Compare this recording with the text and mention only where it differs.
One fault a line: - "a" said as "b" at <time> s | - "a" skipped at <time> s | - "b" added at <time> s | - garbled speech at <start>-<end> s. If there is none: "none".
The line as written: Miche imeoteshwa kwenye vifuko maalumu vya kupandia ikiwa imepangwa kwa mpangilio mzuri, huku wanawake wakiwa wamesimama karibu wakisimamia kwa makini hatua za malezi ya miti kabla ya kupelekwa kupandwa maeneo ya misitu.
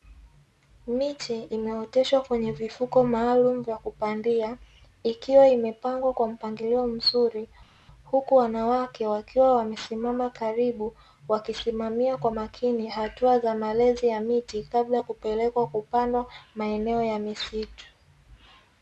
none